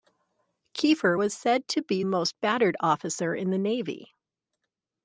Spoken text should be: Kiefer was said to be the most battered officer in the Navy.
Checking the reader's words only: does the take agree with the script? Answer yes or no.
no